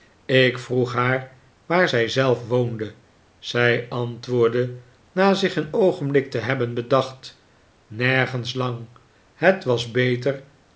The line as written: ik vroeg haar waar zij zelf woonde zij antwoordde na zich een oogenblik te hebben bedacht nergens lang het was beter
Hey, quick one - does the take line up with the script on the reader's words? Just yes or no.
yes